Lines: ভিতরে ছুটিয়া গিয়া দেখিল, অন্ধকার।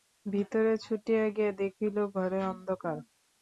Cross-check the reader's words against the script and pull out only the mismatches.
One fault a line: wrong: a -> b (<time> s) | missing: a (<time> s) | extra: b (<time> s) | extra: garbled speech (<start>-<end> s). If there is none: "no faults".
extra: ঘরে (2.1 s)